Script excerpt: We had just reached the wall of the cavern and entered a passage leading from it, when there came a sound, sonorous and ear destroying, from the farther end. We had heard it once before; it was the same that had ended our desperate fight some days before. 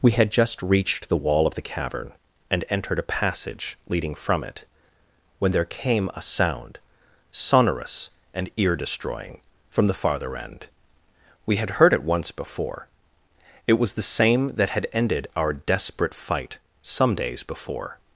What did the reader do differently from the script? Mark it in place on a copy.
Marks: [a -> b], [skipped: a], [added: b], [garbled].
We had just reached the wall of the cavern and entered a passage leading from it, when there came a sound, sonorous and ear destroying, from the farther end. We had heard it once before; it was the same that had ended our desperate fight some days before.